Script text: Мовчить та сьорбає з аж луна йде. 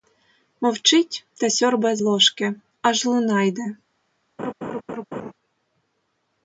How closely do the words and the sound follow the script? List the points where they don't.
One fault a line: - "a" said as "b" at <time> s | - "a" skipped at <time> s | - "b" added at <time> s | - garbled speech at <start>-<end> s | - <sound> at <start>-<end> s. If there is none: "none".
- "ложки" added at 2.0 s
- laugh at 4.4-5.3 s